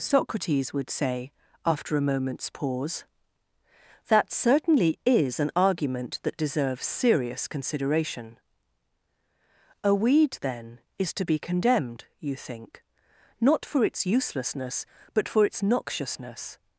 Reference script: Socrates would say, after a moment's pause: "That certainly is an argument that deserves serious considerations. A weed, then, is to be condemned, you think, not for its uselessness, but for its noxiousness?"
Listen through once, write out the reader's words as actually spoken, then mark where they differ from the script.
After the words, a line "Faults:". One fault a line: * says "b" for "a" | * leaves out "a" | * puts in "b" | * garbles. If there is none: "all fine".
Socrates would say, after a moment's pause: "That certainly is an argument that deserves serious consideration. A weed, then, is to be condemned, you think, not for its uselessness, but for its noxiousness?"
Faults:
* says "consideration" for "considerations"